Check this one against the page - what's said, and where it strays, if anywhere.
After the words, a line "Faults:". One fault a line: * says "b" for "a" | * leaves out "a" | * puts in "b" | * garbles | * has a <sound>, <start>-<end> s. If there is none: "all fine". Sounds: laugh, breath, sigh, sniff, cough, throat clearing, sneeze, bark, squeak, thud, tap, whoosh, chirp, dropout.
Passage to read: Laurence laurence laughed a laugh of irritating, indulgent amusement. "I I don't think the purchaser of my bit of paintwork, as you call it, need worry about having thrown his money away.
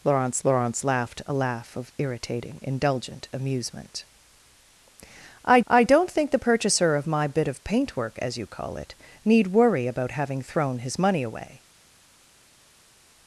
Laurence laurence laughed a laugh of irritating, indulgent amusement. "I I don't think the purchaser of my bit of paintwork, as you call it, need worry about having thrown his money away.
Faults:
all fine